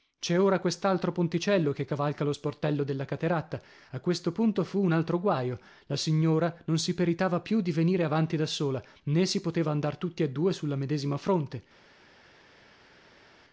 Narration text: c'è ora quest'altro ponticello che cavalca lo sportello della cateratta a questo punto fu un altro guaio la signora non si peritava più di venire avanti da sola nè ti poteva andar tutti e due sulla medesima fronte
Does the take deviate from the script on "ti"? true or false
true